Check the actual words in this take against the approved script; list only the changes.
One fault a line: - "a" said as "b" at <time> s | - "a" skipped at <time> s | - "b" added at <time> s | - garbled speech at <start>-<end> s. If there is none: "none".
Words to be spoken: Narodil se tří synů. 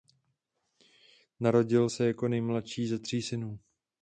- "jako nejmladší ze" added at 2.1 s